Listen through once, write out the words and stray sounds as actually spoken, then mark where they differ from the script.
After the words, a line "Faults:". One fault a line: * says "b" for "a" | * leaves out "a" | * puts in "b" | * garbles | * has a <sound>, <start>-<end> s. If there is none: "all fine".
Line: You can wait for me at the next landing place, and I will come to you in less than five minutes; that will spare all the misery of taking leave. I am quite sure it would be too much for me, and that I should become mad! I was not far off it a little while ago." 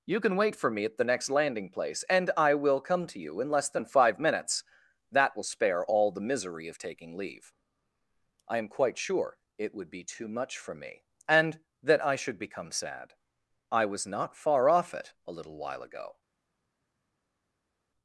You can wait for me at the next landing place, and I will come to you in less than five minutes; that will spare all the misery of taking leave. I am quite sure it would be too much for me, and that I should become sad! I was not far off it a little while ago."
Faults:
* says "sad" for "mad"